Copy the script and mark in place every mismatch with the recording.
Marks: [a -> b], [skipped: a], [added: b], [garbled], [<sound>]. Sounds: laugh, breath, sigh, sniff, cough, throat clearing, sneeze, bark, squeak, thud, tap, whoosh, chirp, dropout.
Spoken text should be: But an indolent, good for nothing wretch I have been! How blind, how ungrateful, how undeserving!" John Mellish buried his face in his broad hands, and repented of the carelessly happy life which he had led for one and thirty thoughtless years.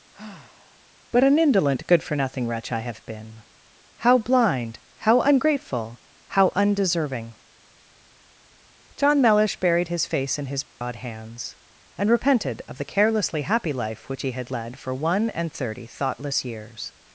[sigh] But an indolent, good for nothing wretch I have been! How blind, how ungrateful, how undeserving!" John Mellish buried his face in his broad [dropout] hands, and repented of the carelessly happy life which he had led for one and thirty thoughtless years.